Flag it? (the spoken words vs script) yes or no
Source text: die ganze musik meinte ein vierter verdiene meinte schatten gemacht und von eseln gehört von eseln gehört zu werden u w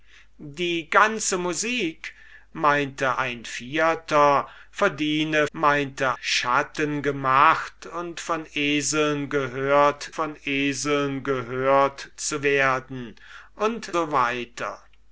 no